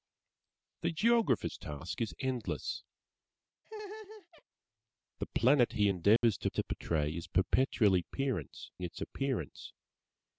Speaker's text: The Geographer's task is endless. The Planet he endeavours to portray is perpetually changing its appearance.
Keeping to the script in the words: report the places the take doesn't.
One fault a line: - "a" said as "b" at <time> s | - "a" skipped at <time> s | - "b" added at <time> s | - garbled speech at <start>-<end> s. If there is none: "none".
- "to" added at 6.5 s
- "changing" said as "appearance" at 8.0 s